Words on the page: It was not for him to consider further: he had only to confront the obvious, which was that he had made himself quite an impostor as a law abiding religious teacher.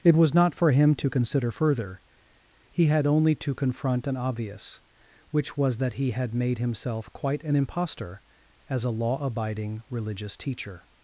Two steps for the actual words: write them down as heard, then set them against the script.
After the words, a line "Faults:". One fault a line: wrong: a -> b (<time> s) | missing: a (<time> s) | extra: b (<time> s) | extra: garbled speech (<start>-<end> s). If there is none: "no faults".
It was not for him to consider further: he had only to confront an obvious, which was that he had made himself quite an impostor as a law abiding religious teacher.
Faults:
wrong: the -> an (4.1 s)